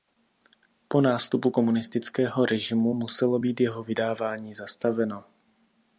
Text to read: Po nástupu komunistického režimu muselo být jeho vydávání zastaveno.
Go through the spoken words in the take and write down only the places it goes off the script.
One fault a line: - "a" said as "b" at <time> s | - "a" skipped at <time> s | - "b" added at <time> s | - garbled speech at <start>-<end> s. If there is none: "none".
none